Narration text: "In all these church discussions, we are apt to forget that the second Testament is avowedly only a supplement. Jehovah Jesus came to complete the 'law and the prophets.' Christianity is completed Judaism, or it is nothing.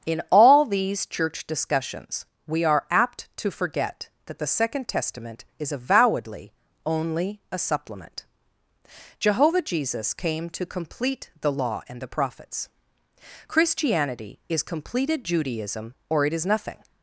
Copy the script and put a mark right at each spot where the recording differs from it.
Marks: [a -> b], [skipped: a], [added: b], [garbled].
"In all these church discussions, we are apt to forget that the second Testament is avowedly only a supplement. Jehovah Jesus came to complete the 'law and the prophets.' Christianity is completed Judaism, or it is nothing.